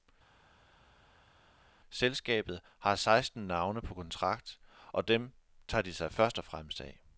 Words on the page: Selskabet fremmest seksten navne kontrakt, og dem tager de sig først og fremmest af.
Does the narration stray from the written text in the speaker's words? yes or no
yes